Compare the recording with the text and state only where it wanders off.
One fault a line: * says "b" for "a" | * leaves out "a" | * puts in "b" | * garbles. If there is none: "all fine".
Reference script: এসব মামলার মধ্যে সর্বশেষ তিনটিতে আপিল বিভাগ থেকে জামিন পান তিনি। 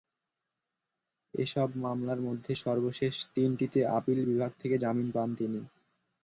all fine